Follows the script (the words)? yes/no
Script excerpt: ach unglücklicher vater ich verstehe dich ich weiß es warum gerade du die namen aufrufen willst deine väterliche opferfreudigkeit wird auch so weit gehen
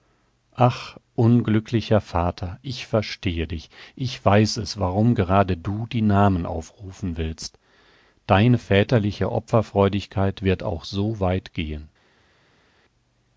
yes